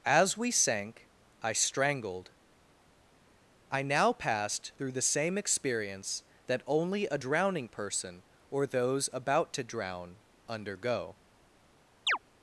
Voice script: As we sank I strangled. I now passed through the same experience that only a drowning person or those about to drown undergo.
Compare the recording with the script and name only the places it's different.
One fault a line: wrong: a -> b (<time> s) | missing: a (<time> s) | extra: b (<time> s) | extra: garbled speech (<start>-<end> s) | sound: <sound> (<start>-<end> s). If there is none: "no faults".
sound: chirp (12.1-12.2 s)